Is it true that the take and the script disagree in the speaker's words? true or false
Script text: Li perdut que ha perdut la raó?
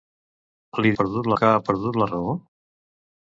false